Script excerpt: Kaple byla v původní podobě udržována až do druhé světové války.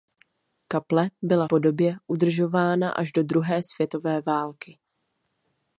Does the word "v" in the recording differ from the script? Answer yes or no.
yes